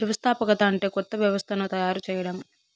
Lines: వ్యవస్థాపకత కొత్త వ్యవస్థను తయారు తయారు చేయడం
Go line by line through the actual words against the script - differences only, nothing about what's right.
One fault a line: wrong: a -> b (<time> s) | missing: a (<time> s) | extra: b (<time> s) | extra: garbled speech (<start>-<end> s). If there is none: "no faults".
extra: అంటే (0.6 s)
missing: తయారు (2.0 s)